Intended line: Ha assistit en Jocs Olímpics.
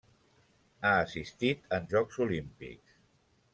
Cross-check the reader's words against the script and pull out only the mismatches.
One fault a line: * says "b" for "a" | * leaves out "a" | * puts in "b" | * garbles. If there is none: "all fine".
all fine